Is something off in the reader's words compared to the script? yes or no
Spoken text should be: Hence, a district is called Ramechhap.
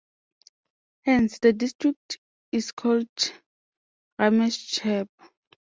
yes